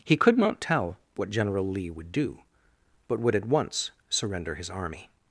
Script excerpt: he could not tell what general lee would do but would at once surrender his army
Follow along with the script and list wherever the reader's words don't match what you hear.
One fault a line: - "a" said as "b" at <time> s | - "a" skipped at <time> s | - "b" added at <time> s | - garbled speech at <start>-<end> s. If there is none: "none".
none